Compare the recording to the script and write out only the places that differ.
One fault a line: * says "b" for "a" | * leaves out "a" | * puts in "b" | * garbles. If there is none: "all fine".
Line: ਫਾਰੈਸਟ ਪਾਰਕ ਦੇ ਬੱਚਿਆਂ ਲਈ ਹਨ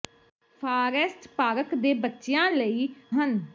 all fine